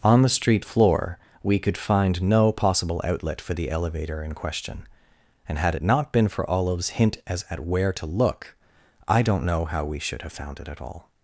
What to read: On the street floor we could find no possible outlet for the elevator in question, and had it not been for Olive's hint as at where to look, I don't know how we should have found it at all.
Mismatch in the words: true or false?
false